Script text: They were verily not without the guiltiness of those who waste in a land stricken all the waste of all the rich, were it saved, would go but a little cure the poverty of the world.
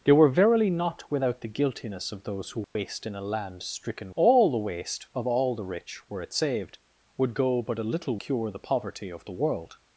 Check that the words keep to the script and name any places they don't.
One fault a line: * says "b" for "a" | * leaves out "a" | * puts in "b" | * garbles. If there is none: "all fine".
all fine